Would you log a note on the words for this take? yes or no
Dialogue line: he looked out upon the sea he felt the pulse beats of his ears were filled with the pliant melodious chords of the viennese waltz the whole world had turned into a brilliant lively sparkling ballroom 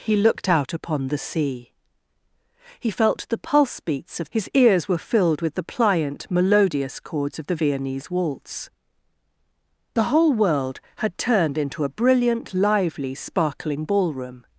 no